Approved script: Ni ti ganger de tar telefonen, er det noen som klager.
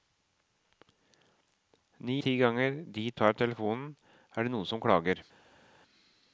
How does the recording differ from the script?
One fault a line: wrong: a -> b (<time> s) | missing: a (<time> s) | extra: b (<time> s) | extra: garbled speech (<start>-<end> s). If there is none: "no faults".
no faults